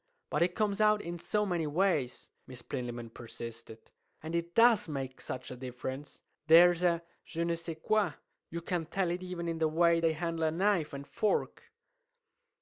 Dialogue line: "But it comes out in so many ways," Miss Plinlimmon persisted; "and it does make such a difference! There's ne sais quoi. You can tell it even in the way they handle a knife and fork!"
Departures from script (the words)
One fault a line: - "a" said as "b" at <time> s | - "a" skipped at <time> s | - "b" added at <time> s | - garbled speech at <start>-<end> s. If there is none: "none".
- "a je" added at 6.8 s